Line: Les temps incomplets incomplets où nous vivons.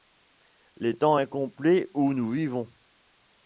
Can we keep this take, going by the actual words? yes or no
no